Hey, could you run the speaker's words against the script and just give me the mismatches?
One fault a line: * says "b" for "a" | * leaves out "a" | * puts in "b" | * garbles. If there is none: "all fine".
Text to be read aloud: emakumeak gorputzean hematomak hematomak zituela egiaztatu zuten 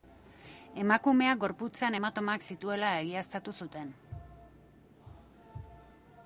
* leaves out "hematomak"